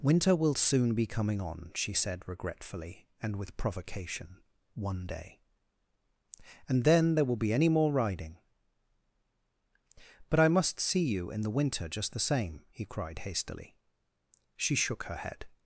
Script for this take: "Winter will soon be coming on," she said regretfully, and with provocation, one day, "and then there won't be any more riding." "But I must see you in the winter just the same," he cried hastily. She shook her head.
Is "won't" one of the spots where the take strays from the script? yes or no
yes